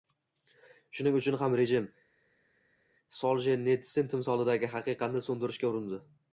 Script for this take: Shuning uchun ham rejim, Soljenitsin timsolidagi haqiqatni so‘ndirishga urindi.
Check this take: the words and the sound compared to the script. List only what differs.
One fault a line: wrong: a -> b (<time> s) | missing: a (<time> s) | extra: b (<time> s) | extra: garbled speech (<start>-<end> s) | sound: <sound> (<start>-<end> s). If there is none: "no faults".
no faults